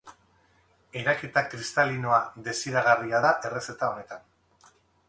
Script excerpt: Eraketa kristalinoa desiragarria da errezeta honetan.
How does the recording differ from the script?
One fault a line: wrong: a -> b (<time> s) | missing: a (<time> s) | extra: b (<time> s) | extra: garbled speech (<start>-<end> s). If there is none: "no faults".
no faults